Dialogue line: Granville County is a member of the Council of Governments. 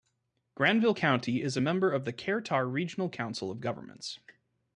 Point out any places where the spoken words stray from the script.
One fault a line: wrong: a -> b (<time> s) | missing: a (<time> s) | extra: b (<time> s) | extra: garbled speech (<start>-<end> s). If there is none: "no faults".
extra: Kerr Tar Regional (2.1 s)